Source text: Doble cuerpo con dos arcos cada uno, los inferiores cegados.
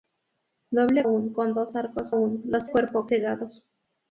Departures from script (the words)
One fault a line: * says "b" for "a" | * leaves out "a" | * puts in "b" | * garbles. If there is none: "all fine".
* says "uno" for "cuerpo"
* leaves out "cada"
* says "cuerpo" for "inferiores"